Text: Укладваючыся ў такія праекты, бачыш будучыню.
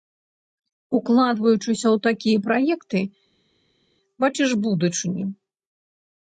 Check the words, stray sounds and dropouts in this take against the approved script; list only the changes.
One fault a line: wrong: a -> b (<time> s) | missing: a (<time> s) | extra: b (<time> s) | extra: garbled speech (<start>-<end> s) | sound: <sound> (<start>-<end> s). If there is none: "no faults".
no faults